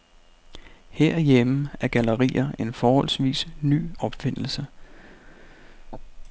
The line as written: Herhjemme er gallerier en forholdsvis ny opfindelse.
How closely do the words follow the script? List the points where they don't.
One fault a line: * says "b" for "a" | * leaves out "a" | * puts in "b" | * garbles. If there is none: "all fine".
all fine